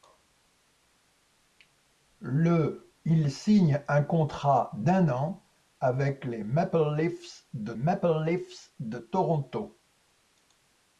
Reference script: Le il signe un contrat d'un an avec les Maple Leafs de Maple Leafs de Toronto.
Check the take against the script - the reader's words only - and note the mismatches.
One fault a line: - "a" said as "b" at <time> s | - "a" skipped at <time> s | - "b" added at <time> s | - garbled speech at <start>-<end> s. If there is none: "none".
none